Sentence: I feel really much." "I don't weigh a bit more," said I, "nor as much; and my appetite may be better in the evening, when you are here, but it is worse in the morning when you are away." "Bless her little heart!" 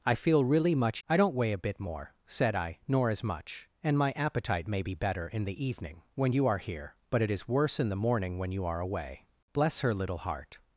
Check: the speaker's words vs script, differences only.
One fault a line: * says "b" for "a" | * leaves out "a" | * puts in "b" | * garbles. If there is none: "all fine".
all fine